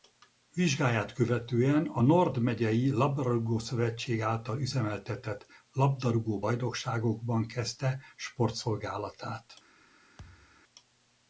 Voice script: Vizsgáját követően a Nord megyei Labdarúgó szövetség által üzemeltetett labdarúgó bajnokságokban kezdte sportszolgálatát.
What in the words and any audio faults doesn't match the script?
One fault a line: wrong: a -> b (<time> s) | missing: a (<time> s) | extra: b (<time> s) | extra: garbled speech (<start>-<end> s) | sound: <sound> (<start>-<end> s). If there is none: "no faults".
sound: thud (10.2-10.6 s)